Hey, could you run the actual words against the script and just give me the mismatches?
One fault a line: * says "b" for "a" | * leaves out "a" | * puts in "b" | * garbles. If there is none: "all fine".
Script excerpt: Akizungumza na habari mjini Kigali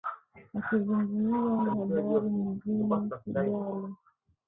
all fine